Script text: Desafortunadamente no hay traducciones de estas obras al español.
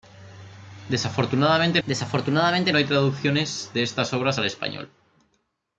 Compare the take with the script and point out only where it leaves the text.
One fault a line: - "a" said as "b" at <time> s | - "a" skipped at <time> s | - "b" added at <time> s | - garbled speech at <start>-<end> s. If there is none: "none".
- "desafortunadamente" added at 1.9 s